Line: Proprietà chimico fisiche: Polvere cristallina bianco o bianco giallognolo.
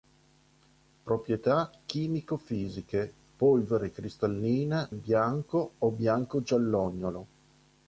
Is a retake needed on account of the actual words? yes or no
no